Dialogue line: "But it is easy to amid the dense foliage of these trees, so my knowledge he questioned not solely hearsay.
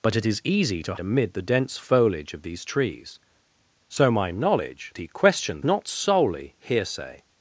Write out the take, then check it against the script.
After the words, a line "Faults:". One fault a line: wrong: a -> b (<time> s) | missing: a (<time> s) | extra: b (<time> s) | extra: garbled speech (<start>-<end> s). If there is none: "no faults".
"But it is easy to amid the dense foliage of these trees, so my knowledge he questioned not solely hearsay.
Faults:
no faults